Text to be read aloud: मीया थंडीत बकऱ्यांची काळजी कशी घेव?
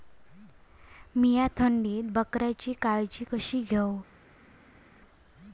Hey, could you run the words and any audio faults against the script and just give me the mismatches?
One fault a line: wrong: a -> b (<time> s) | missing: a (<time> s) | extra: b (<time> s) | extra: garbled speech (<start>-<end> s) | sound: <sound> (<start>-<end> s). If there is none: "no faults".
no faults